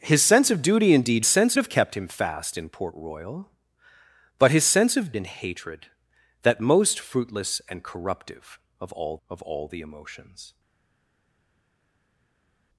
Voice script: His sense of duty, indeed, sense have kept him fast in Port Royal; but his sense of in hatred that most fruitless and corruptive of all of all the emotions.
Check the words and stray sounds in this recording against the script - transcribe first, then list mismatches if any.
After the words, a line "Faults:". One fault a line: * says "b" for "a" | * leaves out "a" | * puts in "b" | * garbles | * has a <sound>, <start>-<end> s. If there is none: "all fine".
His sense of duty, indeed, sense have kept him fast in Port Royal; but his sense of in hatred that most fruitless and corruptive of all of all the emotions.
Faults:
all fine